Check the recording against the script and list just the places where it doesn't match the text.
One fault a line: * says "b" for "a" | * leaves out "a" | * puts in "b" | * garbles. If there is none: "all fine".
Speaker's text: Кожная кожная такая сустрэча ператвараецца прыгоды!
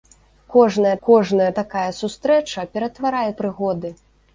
all fine